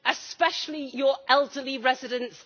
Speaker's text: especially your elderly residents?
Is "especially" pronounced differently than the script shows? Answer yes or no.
no